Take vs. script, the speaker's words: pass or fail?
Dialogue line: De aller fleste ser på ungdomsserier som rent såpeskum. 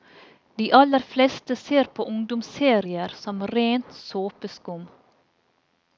pass